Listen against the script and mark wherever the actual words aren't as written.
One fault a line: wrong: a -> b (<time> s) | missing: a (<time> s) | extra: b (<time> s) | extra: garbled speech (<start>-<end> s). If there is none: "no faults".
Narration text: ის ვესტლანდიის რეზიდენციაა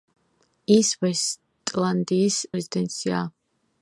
no faults